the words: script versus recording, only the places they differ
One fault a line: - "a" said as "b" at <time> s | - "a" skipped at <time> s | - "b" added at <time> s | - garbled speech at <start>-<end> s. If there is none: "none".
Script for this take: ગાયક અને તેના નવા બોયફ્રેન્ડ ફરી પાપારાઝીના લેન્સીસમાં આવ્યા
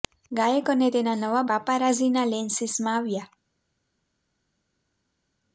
- "બોયફ્રેન્ડ ફરી" skipped at 1.4 s